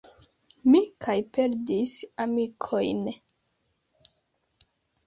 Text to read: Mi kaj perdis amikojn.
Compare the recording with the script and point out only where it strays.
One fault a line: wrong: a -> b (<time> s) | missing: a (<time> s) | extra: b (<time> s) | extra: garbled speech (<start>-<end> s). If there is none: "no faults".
no faults